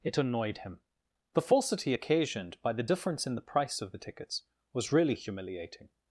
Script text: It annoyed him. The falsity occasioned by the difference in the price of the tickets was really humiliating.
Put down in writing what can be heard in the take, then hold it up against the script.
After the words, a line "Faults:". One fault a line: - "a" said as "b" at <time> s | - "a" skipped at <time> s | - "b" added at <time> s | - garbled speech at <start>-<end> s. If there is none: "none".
It annoyed him. The falsity occasioned by the difference in the price of the tickets was really humiliating.
Faults:
none